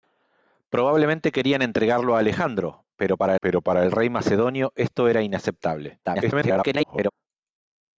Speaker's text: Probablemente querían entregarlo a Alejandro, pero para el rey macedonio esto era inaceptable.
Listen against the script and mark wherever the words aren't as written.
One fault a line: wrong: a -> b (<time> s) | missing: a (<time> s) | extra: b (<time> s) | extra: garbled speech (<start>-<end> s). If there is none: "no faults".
extra: pero para (3.4 s)
extra: garbled speech (6.0-7.1 s)